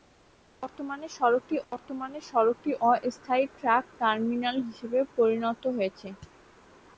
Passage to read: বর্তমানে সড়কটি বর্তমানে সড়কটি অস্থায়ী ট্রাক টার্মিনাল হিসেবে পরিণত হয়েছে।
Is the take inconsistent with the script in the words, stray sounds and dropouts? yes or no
no